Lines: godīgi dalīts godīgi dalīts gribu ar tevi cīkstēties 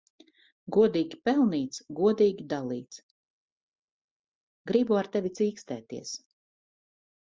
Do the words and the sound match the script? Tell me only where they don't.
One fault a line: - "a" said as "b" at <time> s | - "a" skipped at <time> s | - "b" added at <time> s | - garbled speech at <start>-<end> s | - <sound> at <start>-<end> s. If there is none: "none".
- "dalīts" said as "pelnīts" at 1.3 s